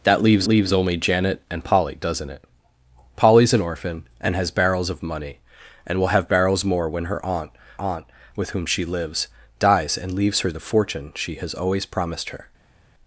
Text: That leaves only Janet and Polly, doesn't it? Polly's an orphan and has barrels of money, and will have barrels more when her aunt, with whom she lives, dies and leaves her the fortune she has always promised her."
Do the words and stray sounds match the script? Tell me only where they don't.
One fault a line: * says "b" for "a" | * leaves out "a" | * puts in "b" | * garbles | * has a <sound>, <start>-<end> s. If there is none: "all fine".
* puts in "leaves"
* puts in "aunt"